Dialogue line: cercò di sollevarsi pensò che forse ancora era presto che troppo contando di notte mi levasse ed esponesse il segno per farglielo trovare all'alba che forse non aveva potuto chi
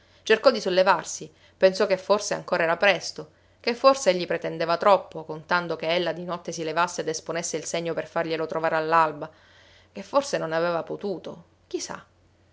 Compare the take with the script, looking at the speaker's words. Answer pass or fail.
fail